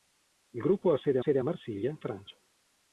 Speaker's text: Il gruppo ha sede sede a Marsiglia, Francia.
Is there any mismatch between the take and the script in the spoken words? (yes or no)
no